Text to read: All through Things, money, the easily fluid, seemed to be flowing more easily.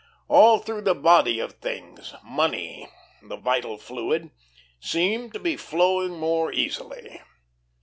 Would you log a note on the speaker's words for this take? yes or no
yes